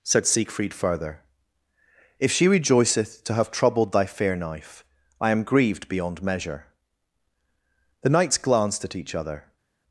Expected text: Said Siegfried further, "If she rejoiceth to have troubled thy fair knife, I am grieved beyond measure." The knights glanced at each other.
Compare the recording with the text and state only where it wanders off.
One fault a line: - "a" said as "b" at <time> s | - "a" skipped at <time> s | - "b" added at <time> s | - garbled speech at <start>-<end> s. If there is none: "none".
none